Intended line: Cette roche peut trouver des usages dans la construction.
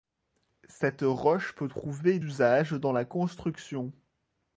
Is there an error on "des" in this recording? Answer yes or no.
yes